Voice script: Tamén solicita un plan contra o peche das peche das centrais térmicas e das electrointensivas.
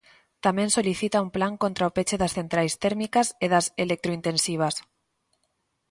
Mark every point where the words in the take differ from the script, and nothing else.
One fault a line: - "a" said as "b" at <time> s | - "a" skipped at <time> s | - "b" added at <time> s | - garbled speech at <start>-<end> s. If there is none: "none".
- "peche das" skipped at 2.4 s